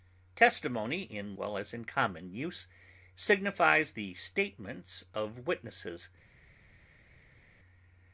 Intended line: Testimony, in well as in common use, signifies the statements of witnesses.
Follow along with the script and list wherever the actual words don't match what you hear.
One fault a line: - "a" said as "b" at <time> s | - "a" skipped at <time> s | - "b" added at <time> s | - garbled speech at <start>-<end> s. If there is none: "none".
none